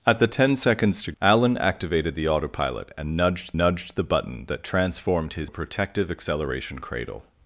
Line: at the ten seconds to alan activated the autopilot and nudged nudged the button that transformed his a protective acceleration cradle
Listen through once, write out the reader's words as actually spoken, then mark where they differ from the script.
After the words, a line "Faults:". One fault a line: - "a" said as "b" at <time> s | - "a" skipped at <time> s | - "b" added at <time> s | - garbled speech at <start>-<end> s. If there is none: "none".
at the ten seconds to alan activated the autopilot and nudged nudged the button that transformed his a protective acceleration cradle
Faults:
none